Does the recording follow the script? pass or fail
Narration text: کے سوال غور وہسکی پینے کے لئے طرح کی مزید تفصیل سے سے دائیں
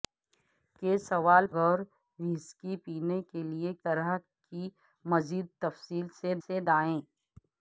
pass